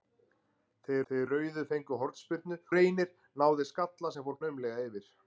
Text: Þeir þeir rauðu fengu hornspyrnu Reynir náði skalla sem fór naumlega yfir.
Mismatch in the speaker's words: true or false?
false